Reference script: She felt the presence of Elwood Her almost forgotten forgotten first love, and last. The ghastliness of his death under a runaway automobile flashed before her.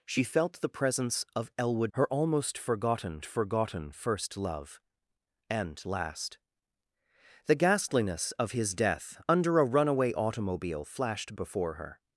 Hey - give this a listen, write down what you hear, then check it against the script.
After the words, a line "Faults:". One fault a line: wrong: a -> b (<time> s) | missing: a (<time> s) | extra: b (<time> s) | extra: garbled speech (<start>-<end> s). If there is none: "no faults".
She felt the presence of Elwood Her almost forgotten forgotten first love, and last. The ghastliness of his death under a runaway automobile flashed before her.
Faults:
no faults